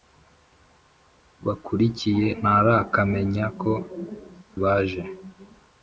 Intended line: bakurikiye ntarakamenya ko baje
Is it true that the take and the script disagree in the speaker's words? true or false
false